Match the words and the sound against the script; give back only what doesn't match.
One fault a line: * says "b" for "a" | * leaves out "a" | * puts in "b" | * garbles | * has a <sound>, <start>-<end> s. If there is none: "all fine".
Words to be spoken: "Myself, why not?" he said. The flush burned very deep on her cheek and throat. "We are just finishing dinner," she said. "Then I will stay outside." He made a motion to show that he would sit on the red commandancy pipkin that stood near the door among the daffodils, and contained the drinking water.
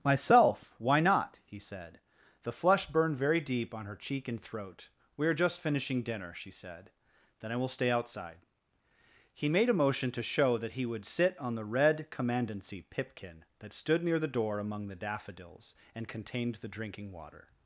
all fine